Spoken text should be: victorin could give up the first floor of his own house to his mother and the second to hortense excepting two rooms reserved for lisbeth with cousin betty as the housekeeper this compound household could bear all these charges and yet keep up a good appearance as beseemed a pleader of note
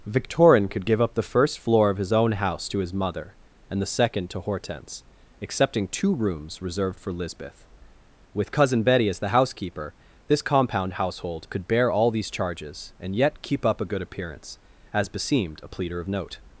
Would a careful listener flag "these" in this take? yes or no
no